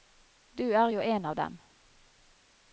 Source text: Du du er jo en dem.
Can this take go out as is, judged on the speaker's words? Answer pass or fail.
fail